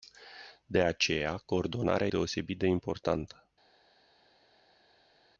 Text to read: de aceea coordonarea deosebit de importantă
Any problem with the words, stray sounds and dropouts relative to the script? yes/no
no